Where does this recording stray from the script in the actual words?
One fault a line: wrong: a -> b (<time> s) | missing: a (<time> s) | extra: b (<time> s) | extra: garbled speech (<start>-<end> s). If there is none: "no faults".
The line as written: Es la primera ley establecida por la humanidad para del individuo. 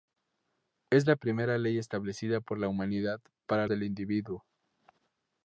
no faults